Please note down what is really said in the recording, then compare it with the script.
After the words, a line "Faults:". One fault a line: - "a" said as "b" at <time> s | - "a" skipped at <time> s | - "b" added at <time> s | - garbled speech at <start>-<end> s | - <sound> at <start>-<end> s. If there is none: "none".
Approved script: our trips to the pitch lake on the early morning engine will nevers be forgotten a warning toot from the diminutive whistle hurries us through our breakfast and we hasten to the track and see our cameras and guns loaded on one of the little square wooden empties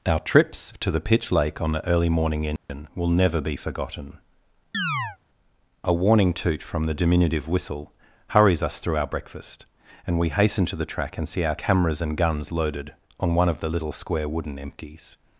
our trips to the pitch lake on the early morning engine will never be forgotten a warning toot from the diminutive whistle hurries us through our breakfast and we hasten to the track and see our cameras and guns loaded on one of the little square wooden empties
Faults:
- dropout at 2.6-2.7 s
- "nevers" said as "never" at 3.1 s
- chirp at 4.7-5.2 s